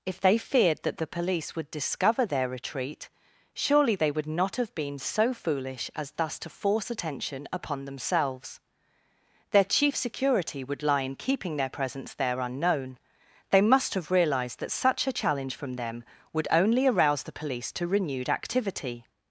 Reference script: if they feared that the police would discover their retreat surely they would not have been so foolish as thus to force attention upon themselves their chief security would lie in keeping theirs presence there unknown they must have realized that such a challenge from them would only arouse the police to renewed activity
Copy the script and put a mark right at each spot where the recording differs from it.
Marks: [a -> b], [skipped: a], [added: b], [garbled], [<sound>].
if they feared that the police would discover their retreat surely they would not have been so foolish as thus to force attention upon themselves their chief security would lie in keeping [theirs -> their] presence there unknown they must have realized that such a challenge from them would only arouse the police to renewed activity